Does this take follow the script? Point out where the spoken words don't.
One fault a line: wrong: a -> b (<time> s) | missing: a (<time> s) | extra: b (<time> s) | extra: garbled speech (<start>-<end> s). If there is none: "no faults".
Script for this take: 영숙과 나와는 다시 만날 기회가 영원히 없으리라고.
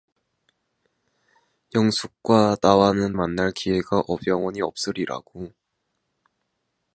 missing: 다시 (3.1 s)